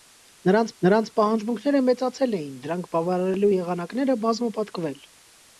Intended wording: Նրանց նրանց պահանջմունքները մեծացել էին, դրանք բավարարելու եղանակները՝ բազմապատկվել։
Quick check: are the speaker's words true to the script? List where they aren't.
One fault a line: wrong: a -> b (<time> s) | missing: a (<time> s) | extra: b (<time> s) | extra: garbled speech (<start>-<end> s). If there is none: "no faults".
no faults